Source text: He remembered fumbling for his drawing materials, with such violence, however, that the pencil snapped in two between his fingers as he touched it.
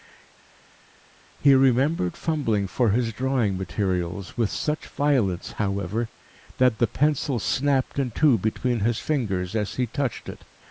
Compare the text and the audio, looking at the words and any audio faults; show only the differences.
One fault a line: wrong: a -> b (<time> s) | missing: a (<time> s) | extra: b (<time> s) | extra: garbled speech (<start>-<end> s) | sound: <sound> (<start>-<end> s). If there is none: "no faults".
no faults